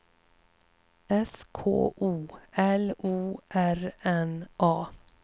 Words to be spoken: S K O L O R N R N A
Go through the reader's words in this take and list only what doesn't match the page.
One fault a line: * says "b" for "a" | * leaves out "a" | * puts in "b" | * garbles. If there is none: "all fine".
* leaves out "R N"